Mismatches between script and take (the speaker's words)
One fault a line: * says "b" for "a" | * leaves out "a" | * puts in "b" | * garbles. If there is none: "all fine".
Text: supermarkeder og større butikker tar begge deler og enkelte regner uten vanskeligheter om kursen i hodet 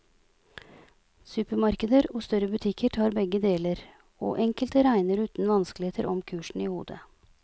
all fine